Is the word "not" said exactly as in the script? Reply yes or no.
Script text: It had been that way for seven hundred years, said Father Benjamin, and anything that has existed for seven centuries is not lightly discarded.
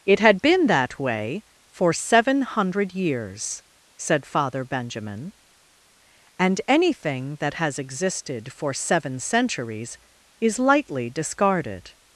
no